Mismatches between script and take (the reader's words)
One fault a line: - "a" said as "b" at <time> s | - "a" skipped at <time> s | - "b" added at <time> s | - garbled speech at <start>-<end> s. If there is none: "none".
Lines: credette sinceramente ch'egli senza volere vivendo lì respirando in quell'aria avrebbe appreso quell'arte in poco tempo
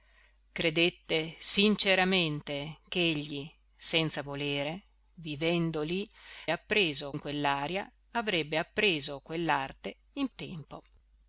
- "respirando" said as "appreso" at 6.5 s
- "poco" skipped at 10.3 s